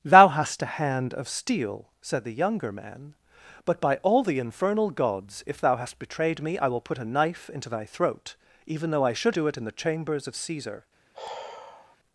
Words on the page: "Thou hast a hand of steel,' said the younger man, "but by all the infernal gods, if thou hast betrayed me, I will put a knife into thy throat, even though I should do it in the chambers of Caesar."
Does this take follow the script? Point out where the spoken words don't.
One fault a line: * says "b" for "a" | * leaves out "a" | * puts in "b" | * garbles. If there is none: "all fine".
all fine